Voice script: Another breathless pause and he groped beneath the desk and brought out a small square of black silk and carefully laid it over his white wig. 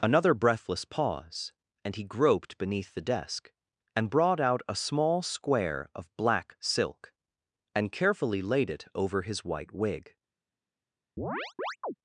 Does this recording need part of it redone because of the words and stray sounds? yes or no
yes